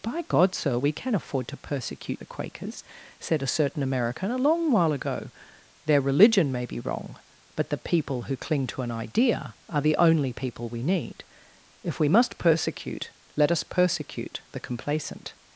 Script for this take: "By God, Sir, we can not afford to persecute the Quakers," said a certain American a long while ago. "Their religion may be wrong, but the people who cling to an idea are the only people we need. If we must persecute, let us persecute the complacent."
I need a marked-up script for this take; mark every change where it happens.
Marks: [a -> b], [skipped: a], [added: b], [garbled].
"By God, Sir, we can [skipped: not] afford to persecute the Quakers," said a certain American a long while ago. "Their religion may be wrong, but the people who cling to an idea are the only people we need. If we must persecute, let us persecute the complacent."